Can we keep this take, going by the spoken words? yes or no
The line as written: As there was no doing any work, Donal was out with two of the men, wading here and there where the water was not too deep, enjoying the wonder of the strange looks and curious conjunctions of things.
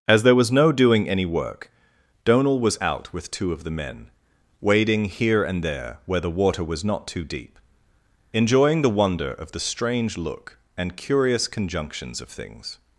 no